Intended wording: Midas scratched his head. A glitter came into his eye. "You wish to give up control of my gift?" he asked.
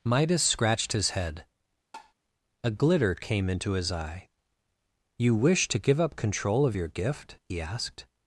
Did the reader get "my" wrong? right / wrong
wrong